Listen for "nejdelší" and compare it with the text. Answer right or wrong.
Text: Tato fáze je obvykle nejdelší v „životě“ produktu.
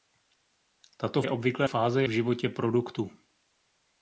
wrong